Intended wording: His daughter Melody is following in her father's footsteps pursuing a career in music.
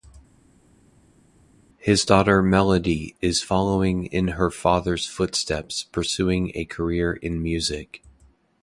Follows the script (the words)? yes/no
yes